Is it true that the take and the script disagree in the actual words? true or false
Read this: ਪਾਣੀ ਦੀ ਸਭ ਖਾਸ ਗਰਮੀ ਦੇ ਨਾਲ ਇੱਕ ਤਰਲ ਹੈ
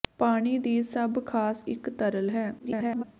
true